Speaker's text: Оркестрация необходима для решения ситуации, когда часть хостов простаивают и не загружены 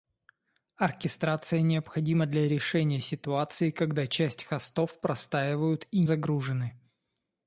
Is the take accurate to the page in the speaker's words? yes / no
no